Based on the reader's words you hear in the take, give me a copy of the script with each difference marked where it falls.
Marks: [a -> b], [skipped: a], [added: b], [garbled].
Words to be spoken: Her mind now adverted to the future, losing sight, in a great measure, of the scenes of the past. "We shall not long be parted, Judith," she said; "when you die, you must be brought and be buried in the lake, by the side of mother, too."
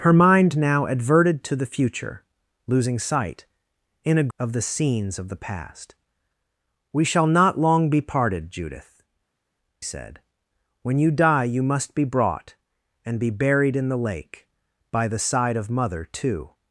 Her mind now adverted to the future, losing sight, in a [skipped: great measure,] of the scenes of the past. "We shall not long be parted, Judith," [skipped: she] said; "when you die, you must be brought and be buried in the lake, by the side of mother, too."